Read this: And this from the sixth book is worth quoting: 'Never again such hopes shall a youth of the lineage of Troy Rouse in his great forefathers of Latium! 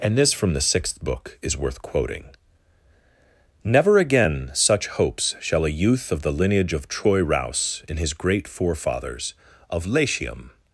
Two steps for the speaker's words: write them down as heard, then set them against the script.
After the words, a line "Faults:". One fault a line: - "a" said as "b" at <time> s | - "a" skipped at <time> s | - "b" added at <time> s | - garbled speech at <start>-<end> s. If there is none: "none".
And this from the sixth book is worth quoting: 'Never again such hopes shall a youth of the lineage of Troy Rouse in his great forefathers of Latium!
Faults:
none